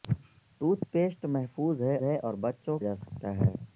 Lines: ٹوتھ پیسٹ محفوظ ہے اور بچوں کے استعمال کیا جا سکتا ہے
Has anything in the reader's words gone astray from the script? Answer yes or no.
yes